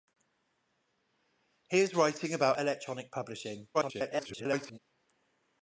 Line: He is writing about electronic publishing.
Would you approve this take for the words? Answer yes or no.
no